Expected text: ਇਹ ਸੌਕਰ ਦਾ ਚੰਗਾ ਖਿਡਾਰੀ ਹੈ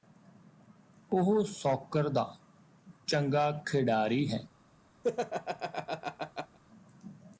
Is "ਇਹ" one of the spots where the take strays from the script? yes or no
yes